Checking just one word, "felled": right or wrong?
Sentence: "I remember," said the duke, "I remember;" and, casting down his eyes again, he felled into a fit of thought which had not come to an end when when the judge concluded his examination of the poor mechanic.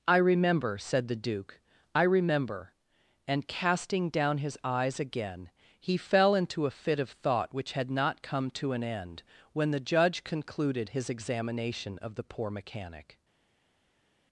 wrong